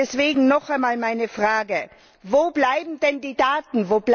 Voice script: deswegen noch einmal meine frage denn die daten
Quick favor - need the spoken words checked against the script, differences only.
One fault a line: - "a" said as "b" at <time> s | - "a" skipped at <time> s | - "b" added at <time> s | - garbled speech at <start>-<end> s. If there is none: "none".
- "wo bleiben" added at 2.2 s